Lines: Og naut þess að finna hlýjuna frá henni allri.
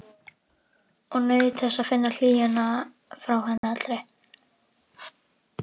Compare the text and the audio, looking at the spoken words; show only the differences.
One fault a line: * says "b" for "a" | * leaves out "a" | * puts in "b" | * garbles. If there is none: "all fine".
all fine